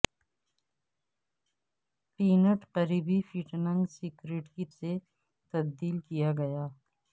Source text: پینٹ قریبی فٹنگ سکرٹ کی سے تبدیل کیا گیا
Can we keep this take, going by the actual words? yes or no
yes